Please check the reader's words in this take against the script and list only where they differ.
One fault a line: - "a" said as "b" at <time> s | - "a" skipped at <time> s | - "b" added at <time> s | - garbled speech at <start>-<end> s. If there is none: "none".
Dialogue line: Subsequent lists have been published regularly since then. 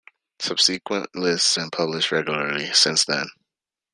- "have" skipped at 1.6 s